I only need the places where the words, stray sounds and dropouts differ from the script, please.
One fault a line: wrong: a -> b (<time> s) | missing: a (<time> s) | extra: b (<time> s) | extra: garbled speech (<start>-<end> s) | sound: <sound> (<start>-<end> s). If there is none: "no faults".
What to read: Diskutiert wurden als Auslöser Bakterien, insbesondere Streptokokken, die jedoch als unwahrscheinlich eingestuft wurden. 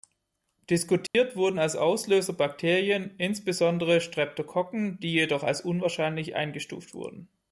sound: dropout (1.1-1.1 s)